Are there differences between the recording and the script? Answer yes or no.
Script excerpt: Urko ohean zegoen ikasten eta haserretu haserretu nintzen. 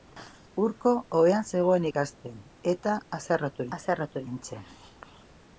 no